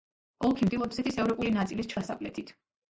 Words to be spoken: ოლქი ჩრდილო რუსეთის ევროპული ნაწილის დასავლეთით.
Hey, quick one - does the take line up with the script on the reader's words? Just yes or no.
yes